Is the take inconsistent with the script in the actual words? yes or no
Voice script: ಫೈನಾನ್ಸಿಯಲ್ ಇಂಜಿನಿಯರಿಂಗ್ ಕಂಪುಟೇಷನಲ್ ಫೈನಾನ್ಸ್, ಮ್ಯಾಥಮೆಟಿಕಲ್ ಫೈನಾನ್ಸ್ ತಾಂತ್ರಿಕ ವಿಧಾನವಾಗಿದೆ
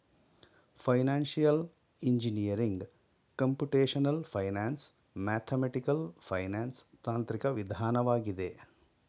no